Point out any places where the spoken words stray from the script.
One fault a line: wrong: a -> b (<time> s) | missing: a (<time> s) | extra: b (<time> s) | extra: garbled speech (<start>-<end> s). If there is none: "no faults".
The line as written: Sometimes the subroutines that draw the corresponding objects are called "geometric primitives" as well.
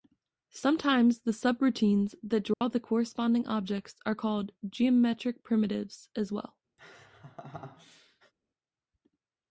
no faults